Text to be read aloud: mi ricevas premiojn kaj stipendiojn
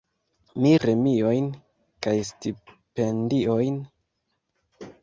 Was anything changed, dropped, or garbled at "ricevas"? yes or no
yes